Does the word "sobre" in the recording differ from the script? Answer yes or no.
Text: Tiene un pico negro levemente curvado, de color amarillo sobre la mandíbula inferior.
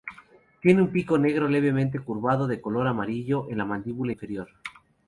yes